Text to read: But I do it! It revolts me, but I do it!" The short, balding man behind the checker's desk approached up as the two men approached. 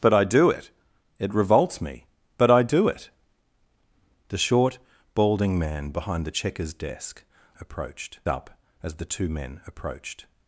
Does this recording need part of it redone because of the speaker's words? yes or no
no